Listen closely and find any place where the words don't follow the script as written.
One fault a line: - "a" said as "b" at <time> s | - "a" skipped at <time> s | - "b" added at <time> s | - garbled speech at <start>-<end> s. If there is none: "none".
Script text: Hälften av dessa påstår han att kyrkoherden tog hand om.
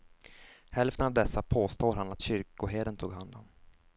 none